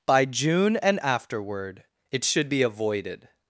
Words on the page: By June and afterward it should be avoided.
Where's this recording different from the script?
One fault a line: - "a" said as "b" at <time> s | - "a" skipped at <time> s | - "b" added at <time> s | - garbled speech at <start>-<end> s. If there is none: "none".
none